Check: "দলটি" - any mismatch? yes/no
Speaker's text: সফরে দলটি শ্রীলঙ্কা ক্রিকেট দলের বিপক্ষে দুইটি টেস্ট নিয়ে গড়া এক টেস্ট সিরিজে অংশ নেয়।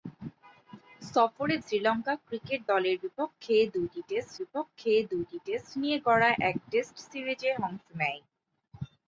yes